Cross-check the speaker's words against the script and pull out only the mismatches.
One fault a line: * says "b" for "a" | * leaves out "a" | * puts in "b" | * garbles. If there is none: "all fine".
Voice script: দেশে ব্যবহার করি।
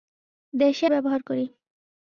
all fine